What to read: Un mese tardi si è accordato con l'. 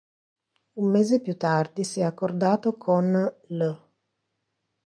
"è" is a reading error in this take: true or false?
false